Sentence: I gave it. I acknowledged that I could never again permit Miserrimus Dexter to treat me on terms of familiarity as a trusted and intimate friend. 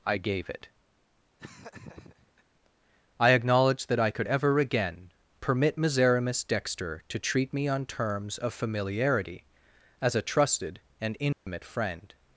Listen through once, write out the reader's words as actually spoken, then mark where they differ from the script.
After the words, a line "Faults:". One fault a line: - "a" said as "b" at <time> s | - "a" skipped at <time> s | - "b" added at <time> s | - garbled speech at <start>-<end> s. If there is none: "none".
I gave it. I acknowledged that I could ever again permit Miserrimus Dexter to treat me on terms of familiarity as a trusted and intimate friend.
Faults:
- "never" said as "ever" at 4.2 s